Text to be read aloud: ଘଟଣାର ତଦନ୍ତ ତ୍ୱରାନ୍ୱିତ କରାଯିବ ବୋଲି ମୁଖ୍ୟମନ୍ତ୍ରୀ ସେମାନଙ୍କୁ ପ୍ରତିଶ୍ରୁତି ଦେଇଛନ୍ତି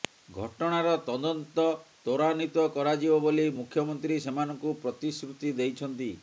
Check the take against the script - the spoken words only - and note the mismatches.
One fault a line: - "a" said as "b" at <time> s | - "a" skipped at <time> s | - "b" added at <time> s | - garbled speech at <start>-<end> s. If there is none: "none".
none